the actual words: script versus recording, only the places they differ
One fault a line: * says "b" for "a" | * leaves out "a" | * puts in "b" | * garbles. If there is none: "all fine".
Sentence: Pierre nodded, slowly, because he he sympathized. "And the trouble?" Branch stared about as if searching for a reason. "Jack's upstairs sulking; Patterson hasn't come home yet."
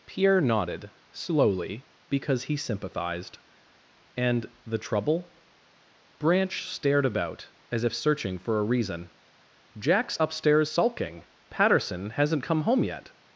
* leaves out "he"